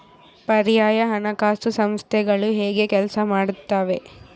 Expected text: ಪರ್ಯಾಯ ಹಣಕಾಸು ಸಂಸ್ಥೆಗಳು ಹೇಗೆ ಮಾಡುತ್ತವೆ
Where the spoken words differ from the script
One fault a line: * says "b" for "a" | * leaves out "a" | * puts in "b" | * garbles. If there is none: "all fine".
* puts in "ಕೆಲಸ"